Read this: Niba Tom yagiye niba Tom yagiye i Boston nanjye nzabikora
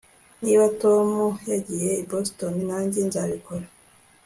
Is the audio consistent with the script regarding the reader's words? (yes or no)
no